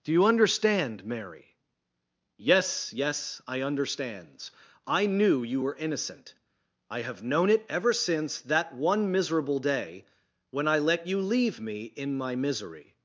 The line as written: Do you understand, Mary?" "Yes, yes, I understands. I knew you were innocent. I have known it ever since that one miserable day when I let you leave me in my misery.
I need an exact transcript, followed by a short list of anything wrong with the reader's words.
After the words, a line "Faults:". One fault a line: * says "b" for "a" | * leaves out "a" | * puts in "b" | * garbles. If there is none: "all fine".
Do you understand, Mary?" "Yes, yes, I understands. I knew you were innocent. I have known it ever since that one miserable day when I let you leave me in my misery.
Faults:
all fine